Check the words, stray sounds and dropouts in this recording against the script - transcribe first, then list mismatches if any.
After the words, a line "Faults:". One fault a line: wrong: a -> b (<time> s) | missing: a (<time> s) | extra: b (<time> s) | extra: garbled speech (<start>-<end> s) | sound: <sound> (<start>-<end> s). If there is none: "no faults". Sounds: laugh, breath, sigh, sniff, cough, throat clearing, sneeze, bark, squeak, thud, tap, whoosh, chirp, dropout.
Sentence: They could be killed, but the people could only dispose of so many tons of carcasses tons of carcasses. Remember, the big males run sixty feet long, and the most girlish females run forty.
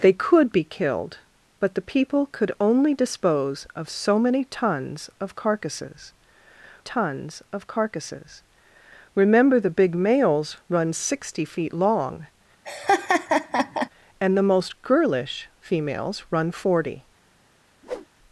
They could be killed, but the people could only dispose of so many tons of carcasses tons of carcasses. Remember, the big males run sixty feet long, and the most girlish females run forty.
Faults:
sound: laugh (12.6-13.9 s)
sound: whoosh (17.8-18.1 s)